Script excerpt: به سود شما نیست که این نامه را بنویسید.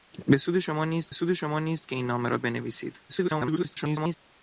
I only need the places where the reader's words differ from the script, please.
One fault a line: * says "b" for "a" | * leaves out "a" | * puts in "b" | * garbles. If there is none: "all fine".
* puts in "سود شما نیست"
* garbles